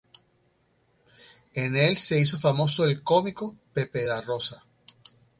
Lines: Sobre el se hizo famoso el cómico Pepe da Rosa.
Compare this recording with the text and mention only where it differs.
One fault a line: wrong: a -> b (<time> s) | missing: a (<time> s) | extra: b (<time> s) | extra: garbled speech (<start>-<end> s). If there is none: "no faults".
wrong: Sobre -> En (1.5 s)